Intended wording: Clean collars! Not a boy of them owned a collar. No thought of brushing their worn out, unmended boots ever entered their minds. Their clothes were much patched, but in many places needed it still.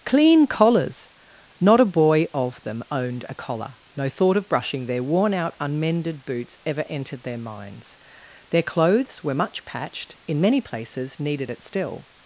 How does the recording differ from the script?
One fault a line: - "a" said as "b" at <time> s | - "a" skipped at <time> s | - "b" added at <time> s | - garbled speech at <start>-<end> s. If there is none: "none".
- "but" skipped at 10.2 s